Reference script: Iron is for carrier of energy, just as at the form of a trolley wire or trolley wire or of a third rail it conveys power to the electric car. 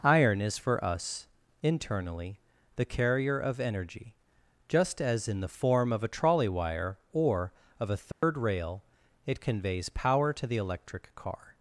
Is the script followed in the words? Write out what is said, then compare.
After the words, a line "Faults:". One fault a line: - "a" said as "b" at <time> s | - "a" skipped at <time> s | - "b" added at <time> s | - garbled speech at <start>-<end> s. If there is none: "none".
Iron is for us internally the carrier of energy, just as in the form of a trolley wire or of a third rail it conveys power to the electric car.
Faults:
- "us internally the" added at 0.8 s
- "at" said as "in" at 5.3 s
- "trolley wire or" skipped at 7.5 s